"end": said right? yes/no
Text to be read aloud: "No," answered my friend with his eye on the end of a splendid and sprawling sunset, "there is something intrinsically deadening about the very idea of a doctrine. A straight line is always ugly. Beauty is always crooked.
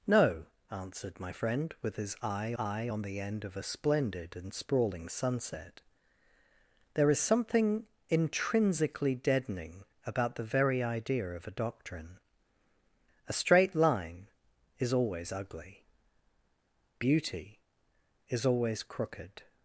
yes